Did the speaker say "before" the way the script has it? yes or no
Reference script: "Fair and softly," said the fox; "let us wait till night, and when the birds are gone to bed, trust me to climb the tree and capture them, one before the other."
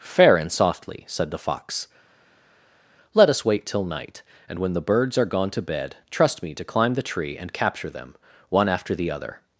no